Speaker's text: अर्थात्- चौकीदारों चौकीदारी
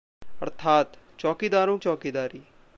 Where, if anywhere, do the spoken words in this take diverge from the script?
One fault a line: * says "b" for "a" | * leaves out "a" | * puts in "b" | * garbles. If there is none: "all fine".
all fine